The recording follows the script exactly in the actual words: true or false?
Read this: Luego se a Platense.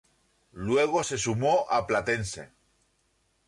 false